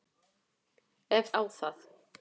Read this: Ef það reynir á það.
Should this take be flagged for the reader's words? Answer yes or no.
yes